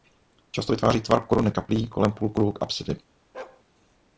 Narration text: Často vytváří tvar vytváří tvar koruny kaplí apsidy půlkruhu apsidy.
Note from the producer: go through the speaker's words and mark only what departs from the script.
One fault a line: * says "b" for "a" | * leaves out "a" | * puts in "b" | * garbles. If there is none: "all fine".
* leaves out "vytváří tvar"
* says "kolem" for "apsidy"